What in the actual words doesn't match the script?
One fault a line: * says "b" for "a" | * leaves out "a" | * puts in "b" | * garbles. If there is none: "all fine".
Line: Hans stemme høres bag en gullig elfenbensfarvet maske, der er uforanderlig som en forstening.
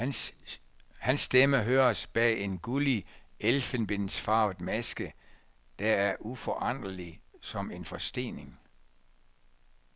all fine